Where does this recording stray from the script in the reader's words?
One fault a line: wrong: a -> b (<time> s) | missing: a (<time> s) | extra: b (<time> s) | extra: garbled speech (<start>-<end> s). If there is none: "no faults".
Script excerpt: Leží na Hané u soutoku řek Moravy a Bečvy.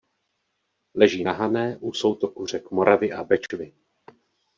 no faults